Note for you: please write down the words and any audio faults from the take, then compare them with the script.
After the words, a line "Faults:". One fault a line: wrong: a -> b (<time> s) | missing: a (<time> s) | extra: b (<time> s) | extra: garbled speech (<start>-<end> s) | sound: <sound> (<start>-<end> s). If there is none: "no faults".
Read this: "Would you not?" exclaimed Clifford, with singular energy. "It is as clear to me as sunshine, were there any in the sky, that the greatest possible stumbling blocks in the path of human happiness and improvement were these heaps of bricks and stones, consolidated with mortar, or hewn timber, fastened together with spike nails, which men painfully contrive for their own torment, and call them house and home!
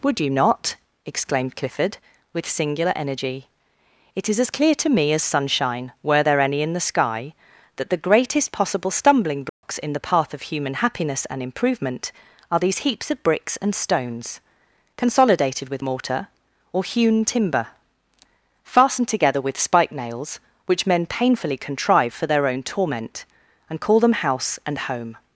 "Would you not?" exclaimed Clifford, with singular energy. "It is as clear to me as sunshine, were there any in the sky, that the greatest possible stumbling blocks in the path of human happiness and improvement are these heaps of bricks and stones, consolidated with mortar, or hewn timber, fastened together with spike nails, which men painfully contrive for their own torment, and call them house and home!
Faults:
sound: dropout (9.5-9.6 s)
wrong: were -> are (12.5 s)